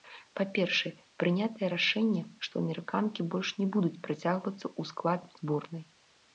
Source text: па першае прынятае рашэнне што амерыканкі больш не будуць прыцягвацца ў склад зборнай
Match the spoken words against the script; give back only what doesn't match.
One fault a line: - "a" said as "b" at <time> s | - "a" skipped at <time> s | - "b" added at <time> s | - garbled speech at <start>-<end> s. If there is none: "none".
none